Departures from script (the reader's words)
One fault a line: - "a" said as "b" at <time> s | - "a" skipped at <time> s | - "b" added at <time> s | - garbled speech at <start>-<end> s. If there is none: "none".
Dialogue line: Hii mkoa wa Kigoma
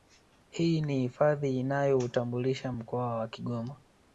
- "ni hifadhi inayoutambulisha" added at 0.8 s